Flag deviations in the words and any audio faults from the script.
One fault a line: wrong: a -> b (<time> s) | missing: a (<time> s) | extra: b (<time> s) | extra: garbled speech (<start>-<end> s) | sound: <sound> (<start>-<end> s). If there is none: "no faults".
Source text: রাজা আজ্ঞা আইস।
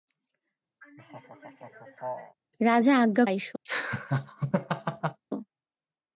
sound: laugh (0.8-2.4 s)
sound: laugh (3.7-5.2 s)